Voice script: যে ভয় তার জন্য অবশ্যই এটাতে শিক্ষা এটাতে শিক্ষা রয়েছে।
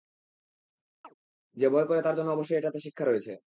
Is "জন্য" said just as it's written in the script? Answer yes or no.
yes